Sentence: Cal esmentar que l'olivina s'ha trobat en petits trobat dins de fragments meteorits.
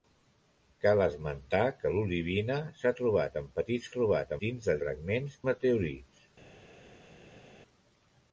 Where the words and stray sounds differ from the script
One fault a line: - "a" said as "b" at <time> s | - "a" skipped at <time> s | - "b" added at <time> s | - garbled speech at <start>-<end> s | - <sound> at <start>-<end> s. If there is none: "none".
none